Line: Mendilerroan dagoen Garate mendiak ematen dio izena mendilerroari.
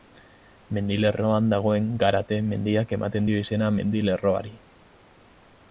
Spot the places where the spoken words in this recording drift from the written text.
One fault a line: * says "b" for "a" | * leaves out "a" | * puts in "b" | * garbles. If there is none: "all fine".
all fine